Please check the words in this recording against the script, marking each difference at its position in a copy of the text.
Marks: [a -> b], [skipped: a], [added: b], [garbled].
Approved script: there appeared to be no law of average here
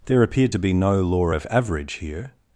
there appeared to be no law of average here